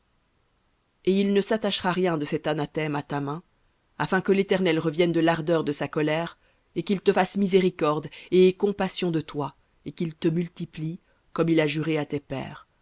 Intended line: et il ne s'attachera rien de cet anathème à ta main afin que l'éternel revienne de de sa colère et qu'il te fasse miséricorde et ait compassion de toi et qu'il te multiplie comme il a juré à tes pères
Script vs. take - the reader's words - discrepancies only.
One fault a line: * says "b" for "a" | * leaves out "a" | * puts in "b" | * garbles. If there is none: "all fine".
* puts in "l'ardeur"